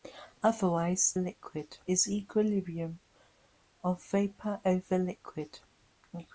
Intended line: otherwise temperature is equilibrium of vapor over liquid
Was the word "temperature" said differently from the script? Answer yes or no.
yes